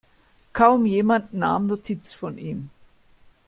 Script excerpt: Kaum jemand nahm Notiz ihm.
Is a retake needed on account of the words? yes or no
yes